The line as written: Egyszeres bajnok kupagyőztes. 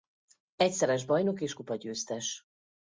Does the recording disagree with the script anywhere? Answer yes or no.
yes